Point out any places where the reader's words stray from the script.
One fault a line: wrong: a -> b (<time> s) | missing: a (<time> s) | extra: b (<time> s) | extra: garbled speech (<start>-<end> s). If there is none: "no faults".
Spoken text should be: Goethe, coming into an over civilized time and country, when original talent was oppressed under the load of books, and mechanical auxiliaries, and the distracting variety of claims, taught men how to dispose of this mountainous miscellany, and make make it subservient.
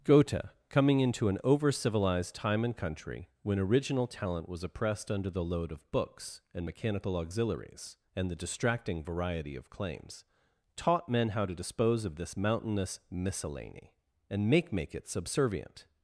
no faults